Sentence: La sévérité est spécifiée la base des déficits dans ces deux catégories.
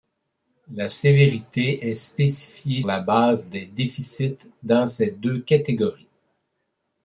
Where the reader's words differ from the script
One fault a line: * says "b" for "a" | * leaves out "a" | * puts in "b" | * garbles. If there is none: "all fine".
all fine